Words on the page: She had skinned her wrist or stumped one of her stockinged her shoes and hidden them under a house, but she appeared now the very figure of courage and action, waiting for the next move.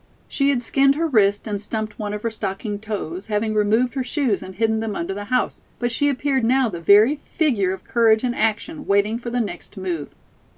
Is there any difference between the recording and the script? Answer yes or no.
yes